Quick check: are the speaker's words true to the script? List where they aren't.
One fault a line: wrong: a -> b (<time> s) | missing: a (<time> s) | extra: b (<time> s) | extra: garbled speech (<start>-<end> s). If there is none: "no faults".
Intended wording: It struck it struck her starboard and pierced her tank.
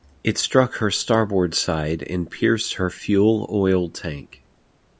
missing: it struck (0.8 s)
extra: side (1.5 s)
extra: fuel oil (2.9 s)